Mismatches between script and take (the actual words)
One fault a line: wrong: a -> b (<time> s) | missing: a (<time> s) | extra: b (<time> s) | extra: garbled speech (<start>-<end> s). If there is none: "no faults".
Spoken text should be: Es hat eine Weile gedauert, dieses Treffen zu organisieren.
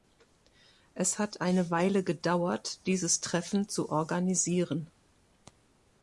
no faults